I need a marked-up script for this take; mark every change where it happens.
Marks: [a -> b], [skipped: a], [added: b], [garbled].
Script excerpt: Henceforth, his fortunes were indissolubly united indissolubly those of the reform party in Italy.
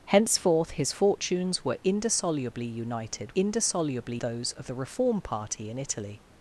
Henceforth, his fortunes were indissolubly united indissolubly those of the reform party in Italy.